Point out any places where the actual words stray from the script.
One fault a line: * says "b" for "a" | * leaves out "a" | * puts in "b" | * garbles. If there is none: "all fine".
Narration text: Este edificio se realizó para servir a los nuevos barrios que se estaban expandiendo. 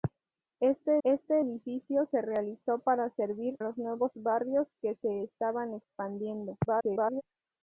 * puts in "este"
* leaves out "a"
* garbles